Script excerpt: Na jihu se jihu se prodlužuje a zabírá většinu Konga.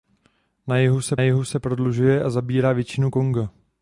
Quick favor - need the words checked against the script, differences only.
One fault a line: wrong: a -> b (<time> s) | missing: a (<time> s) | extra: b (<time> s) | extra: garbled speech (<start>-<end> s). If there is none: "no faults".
no faults